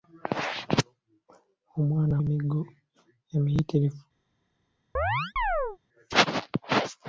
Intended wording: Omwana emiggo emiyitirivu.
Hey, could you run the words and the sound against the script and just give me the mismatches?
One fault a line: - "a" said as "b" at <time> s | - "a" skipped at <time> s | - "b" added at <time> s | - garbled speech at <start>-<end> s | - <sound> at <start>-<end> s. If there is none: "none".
- chirp at 5.0-5.8 s